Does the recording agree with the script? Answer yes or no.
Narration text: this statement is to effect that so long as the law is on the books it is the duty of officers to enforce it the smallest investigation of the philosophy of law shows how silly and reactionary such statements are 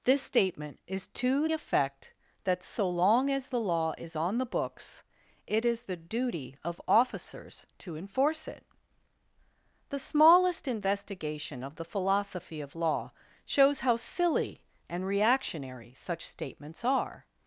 yes